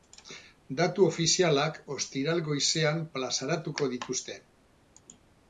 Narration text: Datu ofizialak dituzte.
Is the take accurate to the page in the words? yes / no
no